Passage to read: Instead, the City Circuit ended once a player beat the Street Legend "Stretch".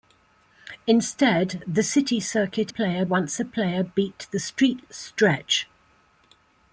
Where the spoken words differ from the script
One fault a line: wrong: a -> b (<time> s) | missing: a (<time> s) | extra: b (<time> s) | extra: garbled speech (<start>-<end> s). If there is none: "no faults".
wrong: ended -> player (2.7 s)
missing: Legend (4.8 s)